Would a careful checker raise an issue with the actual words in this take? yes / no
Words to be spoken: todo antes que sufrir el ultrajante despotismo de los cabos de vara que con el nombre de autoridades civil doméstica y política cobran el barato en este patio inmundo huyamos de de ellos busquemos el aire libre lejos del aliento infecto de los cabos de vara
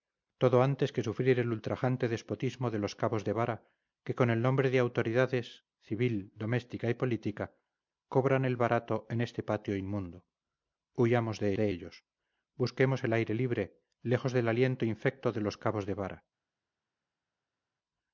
no